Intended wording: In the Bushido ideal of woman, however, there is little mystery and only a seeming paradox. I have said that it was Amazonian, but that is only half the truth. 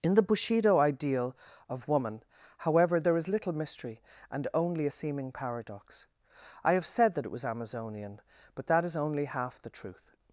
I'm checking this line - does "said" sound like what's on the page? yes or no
yes